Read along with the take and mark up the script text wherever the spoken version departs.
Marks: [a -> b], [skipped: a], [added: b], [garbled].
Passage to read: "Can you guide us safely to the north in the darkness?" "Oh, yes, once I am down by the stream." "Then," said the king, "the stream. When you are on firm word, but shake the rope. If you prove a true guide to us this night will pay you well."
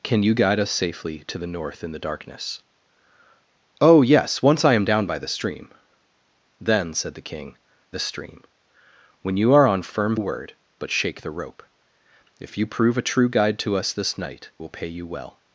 "Can you guide us safely to the north in the darkness?" "Oh, yes, once I am down by the stream." "Then," said the king, "the stream. When you are on firm word, but shake the rope. If you prove a true guide to us this night will pay you well."